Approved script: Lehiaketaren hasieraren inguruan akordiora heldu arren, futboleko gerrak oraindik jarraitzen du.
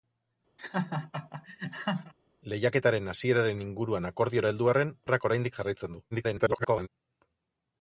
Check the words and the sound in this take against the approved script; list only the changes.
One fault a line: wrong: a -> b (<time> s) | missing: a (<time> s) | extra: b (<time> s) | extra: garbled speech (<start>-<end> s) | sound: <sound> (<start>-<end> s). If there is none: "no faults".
sound: laugh (0.6-2.1 s)
missing: futboleko (4.9 s)
extra: garbled speech (6.1-6.9 s)